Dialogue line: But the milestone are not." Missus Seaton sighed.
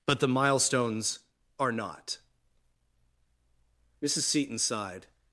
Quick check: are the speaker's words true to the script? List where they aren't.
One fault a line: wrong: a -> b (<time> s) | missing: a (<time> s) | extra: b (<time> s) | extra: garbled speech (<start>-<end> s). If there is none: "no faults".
wrong: milestone -> milestones (0.3 s)